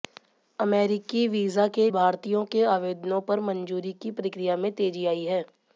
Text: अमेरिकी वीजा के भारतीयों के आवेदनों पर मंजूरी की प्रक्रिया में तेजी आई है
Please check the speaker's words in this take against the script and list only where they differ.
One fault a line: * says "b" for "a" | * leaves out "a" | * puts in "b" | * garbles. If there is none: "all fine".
all fine